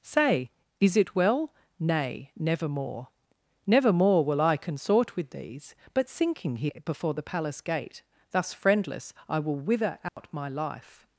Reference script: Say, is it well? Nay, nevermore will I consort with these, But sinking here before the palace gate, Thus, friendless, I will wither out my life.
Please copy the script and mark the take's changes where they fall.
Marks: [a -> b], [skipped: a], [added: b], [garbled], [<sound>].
Say, is it well? Nay, nevermore [added: nevermore] will I consort with these, But sinking here before the palace gate, Thus, friendless, I will wither out [dropout] my life.